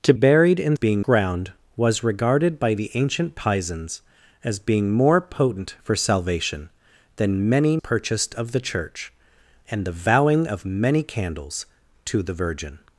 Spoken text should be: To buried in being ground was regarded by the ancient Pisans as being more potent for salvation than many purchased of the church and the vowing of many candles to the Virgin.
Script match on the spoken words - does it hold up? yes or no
yes